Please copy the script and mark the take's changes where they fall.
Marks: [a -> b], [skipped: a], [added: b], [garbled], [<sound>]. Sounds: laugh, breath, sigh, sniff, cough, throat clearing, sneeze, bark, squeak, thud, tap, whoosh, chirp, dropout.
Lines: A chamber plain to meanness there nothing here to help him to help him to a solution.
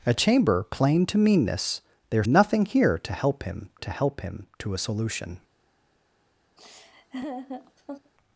A chamber plain to meanness there nothing here to help him to help him to a solution. [laugh]